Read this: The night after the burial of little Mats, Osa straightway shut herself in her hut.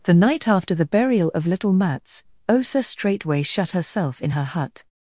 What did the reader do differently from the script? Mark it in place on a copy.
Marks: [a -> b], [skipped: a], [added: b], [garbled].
The night after the burial of little Mats, Osa straightway shut herself in her hut.